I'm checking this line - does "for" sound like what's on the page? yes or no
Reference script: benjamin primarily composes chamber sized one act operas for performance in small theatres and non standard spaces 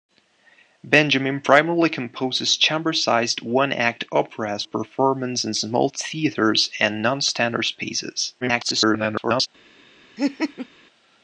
no